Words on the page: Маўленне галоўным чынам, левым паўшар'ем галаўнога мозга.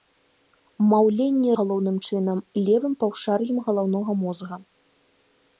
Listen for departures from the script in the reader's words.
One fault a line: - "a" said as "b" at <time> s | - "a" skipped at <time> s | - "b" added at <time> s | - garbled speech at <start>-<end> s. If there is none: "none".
none